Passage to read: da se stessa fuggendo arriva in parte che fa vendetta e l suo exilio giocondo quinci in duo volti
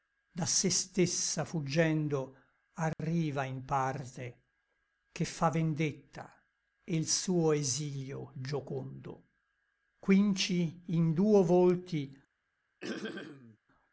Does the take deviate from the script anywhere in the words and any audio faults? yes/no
yes